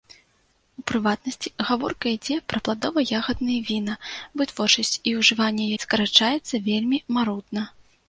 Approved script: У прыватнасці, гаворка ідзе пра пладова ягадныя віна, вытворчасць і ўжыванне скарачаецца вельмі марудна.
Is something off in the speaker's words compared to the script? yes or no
no